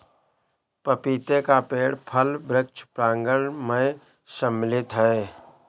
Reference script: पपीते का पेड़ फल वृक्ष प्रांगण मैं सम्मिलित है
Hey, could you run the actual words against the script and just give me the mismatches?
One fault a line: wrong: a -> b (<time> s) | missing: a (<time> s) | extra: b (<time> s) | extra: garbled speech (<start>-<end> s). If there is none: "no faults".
no faults